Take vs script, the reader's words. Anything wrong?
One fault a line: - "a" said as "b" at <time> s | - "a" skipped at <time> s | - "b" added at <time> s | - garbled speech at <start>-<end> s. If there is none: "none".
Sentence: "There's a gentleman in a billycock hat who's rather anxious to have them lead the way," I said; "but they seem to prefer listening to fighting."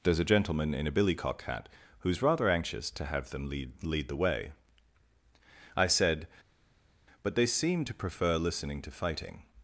- "lead" added at 3.8 s